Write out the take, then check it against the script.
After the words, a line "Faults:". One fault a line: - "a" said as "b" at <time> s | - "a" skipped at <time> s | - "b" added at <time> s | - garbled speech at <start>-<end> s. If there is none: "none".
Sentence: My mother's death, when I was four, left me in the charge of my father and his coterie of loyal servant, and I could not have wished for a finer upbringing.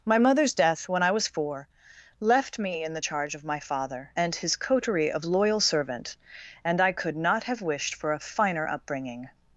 My mother's death, when I was four, left me in the charge of my father and his coterie of loyal servant, and I could not have wished for a finer upbringing.
Faults:
none